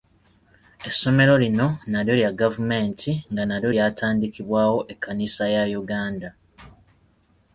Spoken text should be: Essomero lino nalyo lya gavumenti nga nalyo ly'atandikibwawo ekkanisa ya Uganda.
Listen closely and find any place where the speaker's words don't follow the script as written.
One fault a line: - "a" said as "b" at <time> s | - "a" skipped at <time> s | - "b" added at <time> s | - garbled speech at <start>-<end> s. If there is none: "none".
none